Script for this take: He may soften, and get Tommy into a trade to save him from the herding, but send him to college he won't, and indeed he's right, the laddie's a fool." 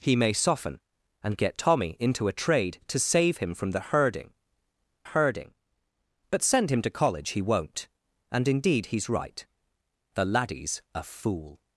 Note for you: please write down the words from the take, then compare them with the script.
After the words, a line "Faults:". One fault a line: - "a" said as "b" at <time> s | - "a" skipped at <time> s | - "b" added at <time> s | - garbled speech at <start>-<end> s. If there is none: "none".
He may soften, and get Tommy into a trade to save him from the herding herding, but send him to college he won't, and indeed he's right, the laddie's a fool."
Faults:
- "herding" added at 5.0 s